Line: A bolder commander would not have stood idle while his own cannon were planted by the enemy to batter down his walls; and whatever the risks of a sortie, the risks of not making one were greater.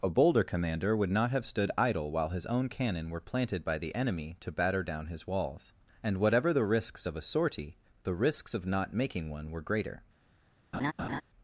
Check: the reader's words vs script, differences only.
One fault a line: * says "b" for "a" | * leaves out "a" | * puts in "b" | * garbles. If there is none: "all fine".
all fine